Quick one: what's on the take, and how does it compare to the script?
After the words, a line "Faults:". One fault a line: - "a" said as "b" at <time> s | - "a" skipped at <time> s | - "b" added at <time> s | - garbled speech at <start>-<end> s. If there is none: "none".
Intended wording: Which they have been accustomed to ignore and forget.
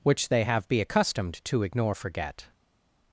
Which they have be accustomed to ignore forget.
Faults:
- "been" said as "be" at 0.7 s
- "and" skipped at 1.9 s